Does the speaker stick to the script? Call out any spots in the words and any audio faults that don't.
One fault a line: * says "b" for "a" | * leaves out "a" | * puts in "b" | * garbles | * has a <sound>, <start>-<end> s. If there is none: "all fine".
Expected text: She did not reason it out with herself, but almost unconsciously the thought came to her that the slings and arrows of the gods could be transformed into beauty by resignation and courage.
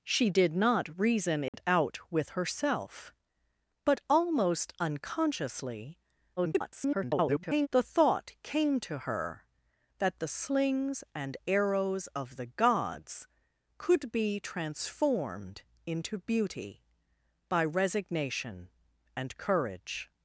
* has a dropout, 1.5-1.5 s
* garbles